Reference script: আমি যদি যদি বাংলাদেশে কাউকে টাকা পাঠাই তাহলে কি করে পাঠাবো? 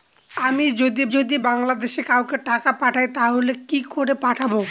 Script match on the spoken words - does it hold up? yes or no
yes